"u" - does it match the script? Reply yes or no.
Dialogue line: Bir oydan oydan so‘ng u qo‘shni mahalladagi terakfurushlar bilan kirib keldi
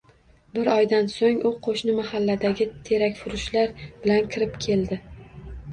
yes